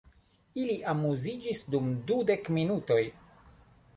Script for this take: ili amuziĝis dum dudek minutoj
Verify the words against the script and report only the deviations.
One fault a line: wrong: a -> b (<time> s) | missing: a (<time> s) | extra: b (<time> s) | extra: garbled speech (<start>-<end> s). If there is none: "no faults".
no faults